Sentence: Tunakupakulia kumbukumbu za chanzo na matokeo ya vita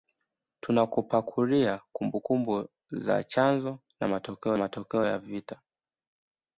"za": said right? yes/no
yes